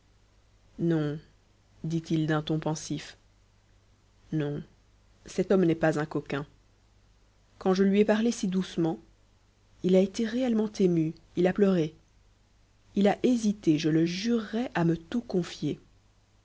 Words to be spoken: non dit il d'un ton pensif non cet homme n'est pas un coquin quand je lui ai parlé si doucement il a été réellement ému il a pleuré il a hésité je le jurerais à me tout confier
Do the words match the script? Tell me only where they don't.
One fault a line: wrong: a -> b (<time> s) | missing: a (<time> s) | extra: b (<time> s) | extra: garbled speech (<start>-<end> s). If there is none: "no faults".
no faults